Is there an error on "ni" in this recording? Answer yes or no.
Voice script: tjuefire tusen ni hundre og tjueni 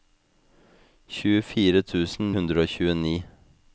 yes